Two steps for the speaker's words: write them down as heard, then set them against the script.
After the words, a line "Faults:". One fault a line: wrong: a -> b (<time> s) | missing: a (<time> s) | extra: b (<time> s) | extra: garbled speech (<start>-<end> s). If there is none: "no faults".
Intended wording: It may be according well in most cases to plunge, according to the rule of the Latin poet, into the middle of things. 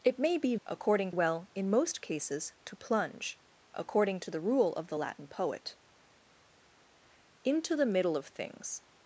It may be according well in most cases to plunge, according to the rule of the Latin poet, into the middle of things.
Faults:
no faults